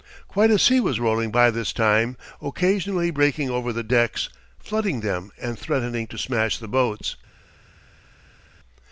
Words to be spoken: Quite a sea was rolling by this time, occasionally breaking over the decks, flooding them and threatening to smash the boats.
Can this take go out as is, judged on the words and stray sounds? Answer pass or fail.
pass